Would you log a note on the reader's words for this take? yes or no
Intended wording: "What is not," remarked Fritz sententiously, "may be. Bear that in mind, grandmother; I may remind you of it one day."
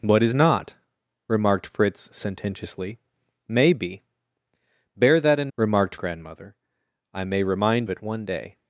yes